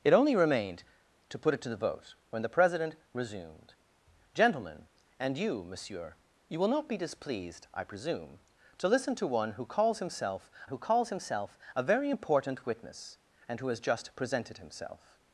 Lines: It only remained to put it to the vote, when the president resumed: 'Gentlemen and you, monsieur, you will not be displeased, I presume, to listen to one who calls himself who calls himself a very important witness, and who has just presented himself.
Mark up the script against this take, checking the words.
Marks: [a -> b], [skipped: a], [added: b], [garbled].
It only remained to put it to the vote, when the president resumed: 'Gentlemen and you, monsieur, you will not be displeased, I presume, to listen to one who calls himself who calls himself a very important witness, and who has just presented himself.